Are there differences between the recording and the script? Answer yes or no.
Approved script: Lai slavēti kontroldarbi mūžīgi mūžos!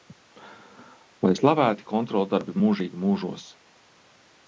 no